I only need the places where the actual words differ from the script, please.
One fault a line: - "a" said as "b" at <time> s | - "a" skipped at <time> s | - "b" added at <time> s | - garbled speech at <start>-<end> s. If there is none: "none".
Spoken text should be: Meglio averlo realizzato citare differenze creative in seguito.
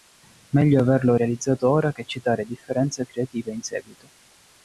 - "ora che" added at 1.7 s